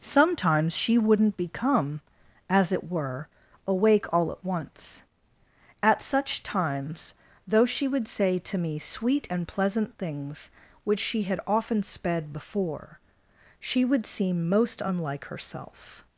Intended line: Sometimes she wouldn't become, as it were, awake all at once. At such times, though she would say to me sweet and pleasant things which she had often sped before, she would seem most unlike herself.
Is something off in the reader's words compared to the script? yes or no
no